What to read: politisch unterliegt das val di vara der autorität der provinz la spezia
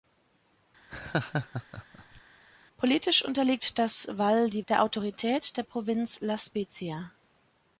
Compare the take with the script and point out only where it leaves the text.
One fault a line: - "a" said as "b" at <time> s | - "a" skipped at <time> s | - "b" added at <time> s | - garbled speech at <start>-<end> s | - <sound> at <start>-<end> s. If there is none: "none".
- laugh at 0.9-2.2 s
- "vara" skipped at 4.6 s